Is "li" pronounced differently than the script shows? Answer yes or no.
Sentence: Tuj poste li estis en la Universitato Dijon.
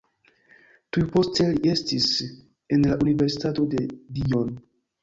no